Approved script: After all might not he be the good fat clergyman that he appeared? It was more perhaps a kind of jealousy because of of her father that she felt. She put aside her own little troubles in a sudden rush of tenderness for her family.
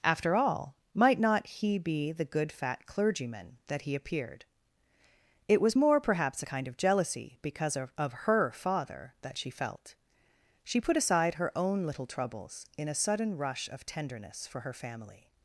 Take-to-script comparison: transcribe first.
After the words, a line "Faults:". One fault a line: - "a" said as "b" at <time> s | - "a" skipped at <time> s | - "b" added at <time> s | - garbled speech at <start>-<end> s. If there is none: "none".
After all might not he be the good fat clergyman that he appeared? It was more perhaps a kind of jealousy because of of her father that she felt. She put aside her own little troubles in a sudden rush of tenderness for her family.
Faults:
none